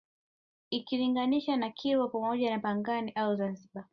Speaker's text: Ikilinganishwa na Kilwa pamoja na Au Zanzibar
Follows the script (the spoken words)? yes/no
no